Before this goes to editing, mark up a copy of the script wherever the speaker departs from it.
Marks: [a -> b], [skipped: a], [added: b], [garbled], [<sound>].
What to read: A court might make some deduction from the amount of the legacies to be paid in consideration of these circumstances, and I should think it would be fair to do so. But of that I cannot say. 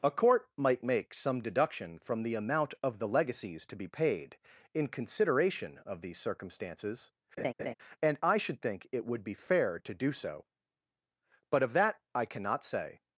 A court might make some deduction from the amount of the legacies to be paid in consideration of these circumstances, [laugh] and I should think it would be fair to do so. But of that I cannot say.